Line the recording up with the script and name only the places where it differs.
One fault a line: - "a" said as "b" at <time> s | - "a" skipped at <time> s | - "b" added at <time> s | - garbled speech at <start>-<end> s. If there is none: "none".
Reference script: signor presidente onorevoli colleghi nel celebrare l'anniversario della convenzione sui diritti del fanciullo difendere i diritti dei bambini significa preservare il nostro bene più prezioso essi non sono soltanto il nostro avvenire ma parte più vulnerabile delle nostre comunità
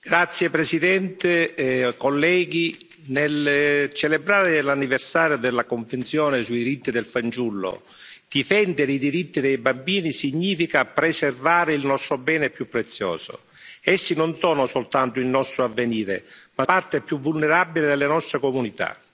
none